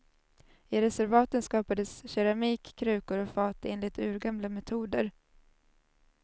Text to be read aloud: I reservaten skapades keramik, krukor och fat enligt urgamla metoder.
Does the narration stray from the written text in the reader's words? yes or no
no